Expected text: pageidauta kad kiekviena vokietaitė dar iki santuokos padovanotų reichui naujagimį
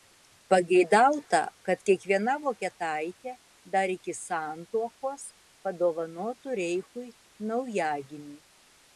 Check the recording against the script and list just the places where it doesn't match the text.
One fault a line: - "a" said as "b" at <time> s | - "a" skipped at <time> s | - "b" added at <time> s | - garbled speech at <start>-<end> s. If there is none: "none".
none